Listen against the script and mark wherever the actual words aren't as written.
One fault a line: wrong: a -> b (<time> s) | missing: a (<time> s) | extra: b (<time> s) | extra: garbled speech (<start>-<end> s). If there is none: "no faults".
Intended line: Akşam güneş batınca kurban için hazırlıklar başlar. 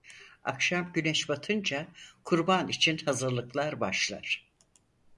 no faults